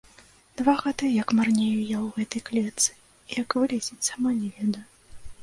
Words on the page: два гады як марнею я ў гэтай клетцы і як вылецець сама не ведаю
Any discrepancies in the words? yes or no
no